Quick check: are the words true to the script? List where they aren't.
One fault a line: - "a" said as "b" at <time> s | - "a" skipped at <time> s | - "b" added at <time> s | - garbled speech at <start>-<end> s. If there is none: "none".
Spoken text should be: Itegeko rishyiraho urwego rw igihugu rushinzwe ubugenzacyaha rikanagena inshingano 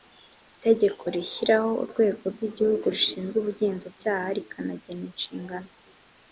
none